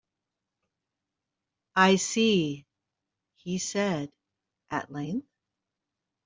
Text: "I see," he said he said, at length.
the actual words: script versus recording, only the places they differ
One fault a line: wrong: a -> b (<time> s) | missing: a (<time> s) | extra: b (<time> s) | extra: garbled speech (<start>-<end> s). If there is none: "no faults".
missing: he said (4.1 s)